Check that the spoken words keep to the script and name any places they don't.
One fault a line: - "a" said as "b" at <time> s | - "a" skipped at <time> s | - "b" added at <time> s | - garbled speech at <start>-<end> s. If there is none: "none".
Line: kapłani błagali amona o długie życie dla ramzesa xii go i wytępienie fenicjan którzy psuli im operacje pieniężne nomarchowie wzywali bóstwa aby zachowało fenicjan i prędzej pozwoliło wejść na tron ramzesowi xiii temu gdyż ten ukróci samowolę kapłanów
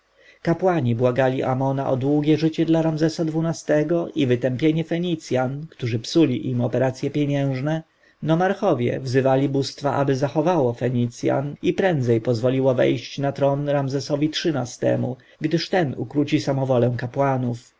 none